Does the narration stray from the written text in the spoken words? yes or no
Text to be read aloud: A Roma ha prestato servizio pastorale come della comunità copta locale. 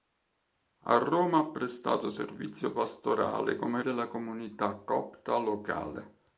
no